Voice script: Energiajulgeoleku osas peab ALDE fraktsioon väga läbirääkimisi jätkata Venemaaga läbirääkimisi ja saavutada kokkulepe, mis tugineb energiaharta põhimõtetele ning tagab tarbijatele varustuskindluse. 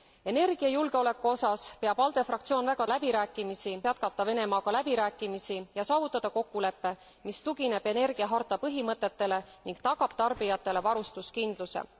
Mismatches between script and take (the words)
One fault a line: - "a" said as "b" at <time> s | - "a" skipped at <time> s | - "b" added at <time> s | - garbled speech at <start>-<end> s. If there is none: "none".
none